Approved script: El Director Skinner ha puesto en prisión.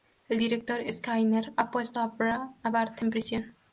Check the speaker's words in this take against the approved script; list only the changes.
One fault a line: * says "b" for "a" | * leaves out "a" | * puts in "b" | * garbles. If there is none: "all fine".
* puts in "a Bart"